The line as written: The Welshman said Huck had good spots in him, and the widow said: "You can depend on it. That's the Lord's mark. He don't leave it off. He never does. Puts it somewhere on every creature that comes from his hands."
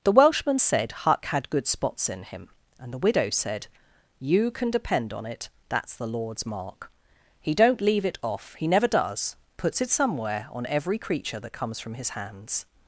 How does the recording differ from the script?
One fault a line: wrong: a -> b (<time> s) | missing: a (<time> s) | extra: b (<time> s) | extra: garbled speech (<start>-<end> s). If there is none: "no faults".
no faults